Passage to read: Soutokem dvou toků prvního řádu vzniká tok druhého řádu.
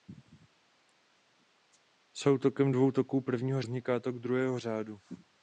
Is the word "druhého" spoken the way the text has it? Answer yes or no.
yes